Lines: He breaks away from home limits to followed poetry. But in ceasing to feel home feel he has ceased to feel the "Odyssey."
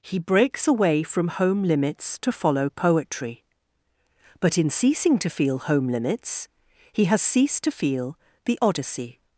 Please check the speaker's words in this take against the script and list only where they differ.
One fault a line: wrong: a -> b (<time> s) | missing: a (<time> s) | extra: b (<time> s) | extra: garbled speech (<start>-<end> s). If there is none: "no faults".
wrong: followed -> follow (2.3 s)
wrong: feel -> limits (5.9 s)